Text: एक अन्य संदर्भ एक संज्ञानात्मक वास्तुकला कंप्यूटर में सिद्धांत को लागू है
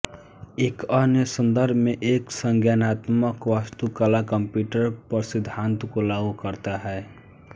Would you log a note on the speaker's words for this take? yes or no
yes